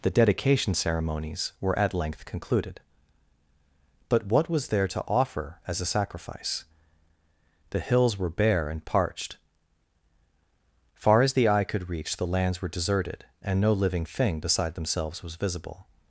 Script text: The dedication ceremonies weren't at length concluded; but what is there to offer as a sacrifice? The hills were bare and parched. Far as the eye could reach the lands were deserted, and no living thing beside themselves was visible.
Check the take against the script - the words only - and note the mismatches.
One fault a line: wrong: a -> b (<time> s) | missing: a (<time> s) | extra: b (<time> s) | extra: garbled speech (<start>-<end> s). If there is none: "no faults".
wrong: weren't -> were (1.6 s)
wrong: is -> was (4.5 s)